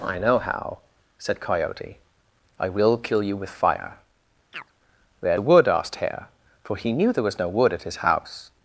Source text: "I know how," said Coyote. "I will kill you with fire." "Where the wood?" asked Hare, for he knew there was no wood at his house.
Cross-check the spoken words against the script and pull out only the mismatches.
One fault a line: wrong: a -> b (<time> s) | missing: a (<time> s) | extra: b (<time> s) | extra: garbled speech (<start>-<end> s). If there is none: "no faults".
no faults